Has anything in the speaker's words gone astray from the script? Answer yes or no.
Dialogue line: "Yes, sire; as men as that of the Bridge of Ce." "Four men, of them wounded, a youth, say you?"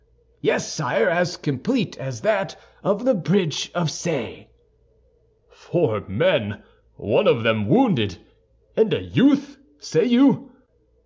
yes